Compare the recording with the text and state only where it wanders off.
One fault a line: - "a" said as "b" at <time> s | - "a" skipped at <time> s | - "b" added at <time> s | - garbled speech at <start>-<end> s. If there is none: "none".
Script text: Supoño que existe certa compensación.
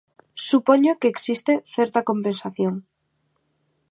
none